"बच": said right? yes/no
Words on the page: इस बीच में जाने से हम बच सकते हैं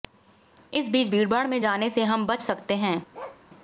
yes